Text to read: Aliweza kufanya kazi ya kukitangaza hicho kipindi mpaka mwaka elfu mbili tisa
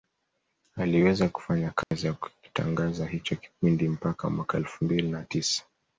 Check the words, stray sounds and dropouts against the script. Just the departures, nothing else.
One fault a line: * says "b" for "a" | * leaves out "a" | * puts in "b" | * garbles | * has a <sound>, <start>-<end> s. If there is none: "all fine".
* has a dropout, 1.8-1.9 s
* puts in "na"